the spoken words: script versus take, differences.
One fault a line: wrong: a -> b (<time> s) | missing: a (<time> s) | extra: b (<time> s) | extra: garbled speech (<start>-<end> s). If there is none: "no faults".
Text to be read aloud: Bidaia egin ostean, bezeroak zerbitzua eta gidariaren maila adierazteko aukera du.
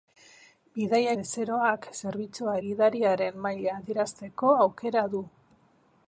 missing: egin ostean (1.1 s)
missing: eta (2.6 s)